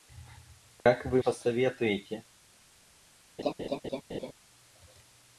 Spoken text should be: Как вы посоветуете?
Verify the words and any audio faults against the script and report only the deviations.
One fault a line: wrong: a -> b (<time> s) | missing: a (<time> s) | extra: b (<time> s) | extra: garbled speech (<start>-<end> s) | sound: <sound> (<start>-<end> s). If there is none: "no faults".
sound: dropout (0.8-0.9 s)
sound: laugh (3.4-4.3 s)